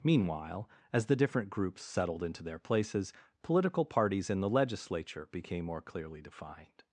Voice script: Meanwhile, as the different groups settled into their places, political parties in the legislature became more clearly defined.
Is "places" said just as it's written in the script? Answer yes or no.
yes